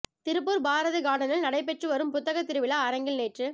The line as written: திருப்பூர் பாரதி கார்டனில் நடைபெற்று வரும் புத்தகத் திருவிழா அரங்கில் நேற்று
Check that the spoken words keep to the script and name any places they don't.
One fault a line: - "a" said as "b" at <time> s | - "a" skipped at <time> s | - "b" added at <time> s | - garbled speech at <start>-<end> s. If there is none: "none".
none